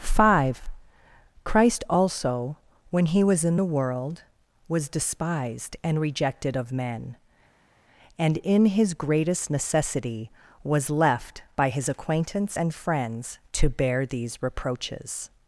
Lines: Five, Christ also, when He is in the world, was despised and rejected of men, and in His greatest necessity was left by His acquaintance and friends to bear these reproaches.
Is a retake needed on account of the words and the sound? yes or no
yes